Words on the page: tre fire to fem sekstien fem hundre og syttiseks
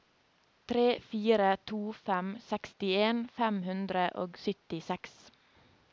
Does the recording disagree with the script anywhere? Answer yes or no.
no